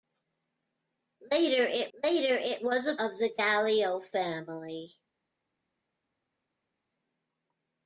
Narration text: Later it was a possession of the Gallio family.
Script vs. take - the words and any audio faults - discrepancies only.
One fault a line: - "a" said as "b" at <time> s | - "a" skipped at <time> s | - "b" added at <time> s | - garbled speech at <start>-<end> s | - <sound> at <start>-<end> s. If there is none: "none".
- "later it" added at 1.9 s
- "possession" skipped at 2.9 s